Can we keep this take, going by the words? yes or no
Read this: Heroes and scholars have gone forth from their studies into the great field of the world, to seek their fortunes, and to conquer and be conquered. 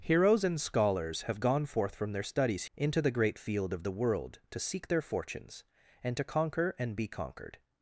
yes